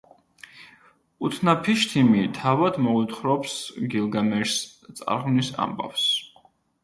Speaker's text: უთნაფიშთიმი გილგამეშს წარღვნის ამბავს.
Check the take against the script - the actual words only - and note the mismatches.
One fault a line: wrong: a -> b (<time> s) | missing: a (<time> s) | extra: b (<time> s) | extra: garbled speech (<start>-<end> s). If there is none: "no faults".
extra: თავად მოუთხრობს (2.4 s)